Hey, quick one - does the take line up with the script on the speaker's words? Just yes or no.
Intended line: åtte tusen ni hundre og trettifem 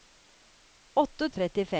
no